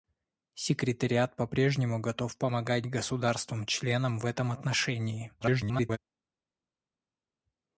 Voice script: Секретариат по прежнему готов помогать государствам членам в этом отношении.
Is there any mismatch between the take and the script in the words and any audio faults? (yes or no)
yes